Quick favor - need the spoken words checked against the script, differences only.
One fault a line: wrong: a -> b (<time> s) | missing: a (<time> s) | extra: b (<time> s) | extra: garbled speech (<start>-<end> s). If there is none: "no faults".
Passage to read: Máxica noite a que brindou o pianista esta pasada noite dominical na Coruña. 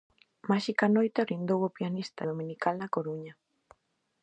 missing: que (1.3 s)
missing: esta pasada noite (2.2 s)